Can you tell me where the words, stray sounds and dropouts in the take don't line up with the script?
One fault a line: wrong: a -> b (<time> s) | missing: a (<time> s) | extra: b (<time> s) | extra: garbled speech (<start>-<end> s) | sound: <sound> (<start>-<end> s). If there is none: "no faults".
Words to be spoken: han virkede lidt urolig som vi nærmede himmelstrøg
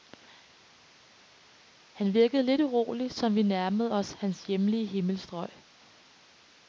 extra: os hans hjemlige (3.9 s)